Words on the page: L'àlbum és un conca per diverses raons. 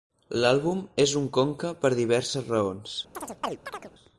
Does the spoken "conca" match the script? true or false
true